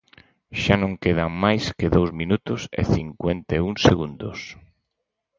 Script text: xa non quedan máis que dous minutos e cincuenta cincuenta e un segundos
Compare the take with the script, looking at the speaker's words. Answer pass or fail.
fail